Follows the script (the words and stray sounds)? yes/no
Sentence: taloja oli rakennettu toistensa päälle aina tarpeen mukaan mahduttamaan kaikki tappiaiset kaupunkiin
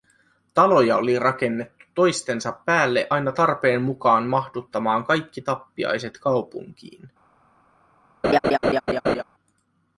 no